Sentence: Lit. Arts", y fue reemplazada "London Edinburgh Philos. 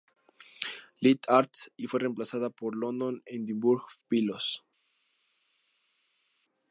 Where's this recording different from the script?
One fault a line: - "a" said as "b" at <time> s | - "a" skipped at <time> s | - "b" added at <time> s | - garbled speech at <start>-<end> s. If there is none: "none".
- "por" added at 2.5 s